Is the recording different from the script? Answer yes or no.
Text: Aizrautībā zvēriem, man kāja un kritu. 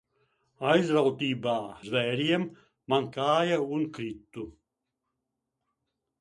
no